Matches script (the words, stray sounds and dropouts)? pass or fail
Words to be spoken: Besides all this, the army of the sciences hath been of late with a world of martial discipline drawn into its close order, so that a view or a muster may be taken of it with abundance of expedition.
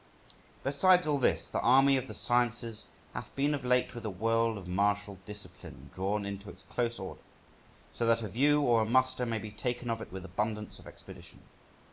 pass